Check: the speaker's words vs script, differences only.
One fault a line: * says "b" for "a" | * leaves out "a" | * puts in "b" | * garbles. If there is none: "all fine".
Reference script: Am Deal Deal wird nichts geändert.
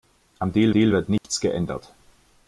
all fine